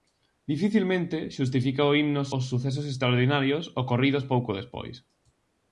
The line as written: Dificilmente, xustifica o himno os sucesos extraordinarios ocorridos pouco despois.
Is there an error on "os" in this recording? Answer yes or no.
no